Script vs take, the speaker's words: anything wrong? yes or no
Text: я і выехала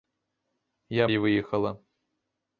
no